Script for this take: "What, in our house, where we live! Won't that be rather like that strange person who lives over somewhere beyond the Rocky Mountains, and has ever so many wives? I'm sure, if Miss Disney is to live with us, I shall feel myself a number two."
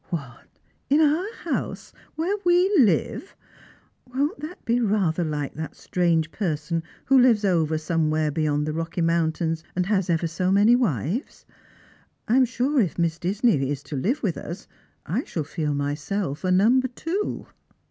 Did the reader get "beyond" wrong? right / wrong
right